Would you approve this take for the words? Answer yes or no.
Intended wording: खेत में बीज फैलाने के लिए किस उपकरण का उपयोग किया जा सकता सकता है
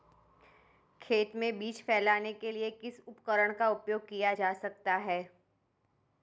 no